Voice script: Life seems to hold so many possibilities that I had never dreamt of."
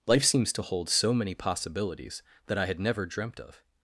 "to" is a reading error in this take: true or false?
false